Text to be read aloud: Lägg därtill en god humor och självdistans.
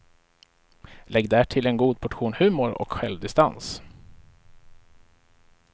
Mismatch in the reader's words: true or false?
true